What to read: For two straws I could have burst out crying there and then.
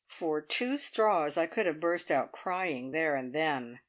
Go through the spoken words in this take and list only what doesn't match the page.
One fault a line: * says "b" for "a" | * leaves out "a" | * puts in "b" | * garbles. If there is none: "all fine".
all fine